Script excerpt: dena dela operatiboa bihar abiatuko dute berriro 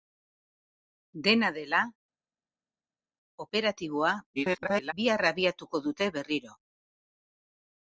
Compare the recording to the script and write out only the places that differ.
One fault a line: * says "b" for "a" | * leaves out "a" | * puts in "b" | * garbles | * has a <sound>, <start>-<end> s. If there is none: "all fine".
* garbles